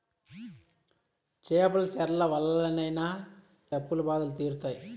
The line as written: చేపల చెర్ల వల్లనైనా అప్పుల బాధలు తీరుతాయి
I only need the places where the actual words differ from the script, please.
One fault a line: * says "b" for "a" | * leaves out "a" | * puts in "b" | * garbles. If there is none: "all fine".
all fine